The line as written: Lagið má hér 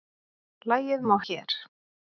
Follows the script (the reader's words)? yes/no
yes